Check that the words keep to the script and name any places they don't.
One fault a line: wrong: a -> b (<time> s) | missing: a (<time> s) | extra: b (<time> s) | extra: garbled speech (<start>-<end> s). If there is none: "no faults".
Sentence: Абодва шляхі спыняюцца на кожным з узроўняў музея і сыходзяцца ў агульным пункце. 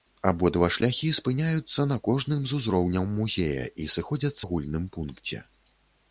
missing: ў (4.4 s)